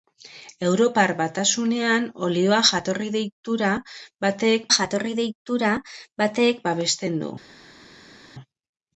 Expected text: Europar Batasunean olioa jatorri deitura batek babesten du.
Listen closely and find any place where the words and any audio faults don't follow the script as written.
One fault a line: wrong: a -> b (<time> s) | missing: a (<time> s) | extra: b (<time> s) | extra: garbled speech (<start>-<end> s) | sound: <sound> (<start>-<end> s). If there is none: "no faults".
extra: jatorri deitura batek (4.8 s)